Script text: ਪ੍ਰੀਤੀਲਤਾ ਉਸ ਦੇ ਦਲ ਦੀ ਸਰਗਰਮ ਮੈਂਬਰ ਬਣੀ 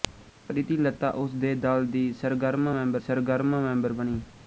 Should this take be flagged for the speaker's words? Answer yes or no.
yes